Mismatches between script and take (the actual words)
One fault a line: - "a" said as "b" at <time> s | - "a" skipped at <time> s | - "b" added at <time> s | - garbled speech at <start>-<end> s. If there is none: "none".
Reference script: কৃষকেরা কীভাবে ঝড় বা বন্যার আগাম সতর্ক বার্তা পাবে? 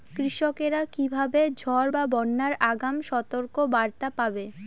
none